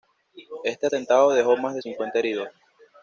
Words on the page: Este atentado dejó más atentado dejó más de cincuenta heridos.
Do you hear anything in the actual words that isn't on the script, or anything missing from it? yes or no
yes